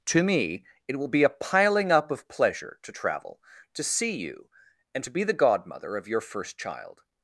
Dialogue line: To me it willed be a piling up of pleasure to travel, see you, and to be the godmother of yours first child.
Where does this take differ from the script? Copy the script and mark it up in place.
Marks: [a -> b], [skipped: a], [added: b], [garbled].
To me it [willed -> will] be a piling up of pleasure to travel, [added: to] see you, and to be the godmother of [yours -> your] first child.